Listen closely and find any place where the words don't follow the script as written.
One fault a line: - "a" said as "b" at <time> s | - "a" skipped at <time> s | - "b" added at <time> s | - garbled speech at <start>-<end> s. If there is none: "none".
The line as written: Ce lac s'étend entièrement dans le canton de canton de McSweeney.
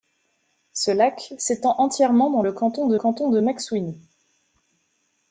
none